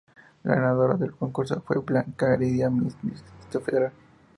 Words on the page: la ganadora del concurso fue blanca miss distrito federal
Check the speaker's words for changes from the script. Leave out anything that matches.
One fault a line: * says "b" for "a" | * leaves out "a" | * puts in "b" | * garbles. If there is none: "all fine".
* puts in "heredia"